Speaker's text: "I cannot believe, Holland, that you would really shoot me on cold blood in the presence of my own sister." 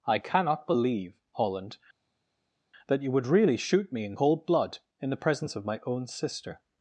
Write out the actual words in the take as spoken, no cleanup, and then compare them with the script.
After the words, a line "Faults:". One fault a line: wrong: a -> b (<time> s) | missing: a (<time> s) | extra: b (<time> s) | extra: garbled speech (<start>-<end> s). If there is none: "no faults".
"I cannot believe, Holland, that you would really shoot me in cold blood in the presence of my own sister."
Faults:
wrong: on -> in (4.0 s)